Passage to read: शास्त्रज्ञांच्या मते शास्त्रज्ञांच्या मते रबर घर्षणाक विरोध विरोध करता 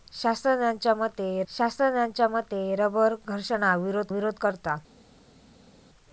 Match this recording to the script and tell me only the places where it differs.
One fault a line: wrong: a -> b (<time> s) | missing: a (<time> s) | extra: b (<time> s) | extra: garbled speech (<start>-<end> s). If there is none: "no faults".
no faults